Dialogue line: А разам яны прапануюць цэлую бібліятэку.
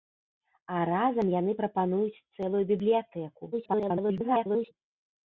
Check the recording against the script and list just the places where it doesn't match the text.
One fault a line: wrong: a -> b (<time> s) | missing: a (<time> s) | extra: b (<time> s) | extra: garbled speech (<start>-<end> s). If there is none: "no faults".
extra: garbled speech (3.5-4.7 s)